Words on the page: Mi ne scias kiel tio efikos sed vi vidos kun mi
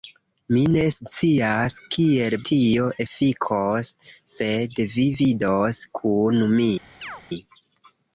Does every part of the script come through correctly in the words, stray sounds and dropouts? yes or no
no